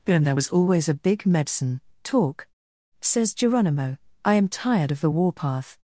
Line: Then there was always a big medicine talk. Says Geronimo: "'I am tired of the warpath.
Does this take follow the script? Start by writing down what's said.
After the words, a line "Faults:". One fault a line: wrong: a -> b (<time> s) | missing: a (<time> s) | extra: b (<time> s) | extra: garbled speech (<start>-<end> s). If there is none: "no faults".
And there was always a big medicine talk. Says Geronimo: "'I am tired of the warpath.
Faults:
wrong: Then -> And (0.1 s)